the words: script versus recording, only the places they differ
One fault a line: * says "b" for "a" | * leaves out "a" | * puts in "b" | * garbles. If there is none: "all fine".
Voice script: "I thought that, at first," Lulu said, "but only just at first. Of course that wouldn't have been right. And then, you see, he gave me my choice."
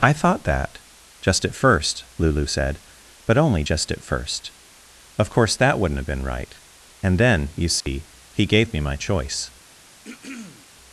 * puts in "just"